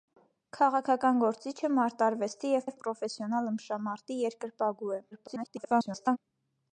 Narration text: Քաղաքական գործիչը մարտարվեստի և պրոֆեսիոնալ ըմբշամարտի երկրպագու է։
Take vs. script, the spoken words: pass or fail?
fail